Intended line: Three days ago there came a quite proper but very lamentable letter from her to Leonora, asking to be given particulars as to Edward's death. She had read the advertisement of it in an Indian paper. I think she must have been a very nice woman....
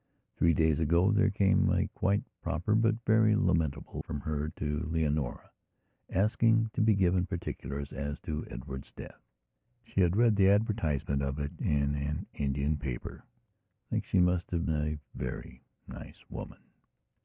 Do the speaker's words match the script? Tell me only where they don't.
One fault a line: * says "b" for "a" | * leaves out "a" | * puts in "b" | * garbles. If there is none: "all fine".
* leaves out "letter"
* leaves out "been"